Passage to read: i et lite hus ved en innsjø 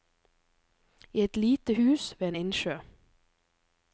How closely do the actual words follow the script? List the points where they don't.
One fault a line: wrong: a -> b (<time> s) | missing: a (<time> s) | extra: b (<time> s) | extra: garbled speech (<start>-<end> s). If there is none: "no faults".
no faults